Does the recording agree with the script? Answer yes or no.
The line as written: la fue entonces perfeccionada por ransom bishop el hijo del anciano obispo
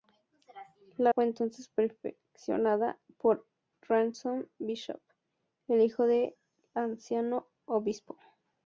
yes